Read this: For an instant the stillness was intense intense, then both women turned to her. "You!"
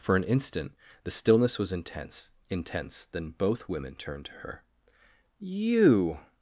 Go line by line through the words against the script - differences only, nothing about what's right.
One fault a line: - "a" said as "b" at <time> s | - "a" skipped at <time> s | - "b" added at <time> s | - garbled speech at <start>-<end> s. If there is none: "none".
none